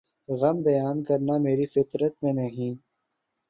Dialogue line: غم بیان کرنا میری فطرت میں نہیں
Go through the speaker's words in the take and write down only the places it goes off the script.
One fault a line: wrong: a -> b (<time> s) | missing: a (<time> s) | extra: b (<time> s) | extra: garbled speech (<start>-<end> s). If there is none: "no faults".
no faults